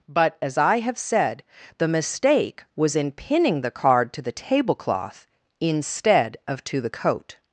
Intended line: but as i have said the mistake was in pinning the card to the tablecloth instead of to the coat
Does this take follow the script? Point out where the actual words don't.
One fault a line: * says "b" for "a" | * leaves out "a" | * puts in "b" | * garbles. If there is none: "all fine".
all fine